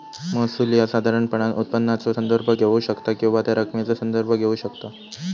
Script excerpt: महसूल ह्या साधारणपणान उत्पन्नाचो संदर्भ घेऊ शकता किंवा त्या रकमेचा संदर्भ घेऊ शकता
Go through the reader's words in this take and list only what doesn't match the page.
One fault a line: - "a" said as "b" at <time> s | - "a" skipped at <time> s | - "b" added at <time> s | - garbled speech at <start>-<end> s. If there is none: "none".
none